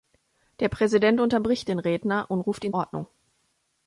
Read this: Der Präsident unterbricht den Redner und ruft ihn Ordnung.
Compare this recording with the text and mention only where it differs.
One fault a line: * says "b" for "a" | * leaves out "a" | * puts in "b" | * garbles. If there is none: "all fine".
all fine